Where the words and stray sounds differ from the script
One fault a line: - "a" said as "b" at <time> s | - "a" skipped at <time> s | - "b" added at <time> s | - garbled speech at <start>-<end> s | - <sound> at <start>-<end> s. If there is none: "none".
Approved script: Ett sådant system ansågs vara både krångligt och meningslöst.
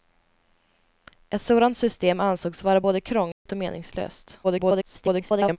- dropout at 3.3-3.5 s
- garbled speech at 4.4-5.6 s